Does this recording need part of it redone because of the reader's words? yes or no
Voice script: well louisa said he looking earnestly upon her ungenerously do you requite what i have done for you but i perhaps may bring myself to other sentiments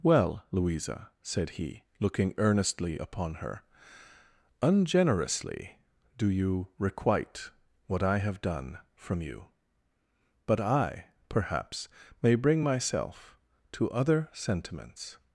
yes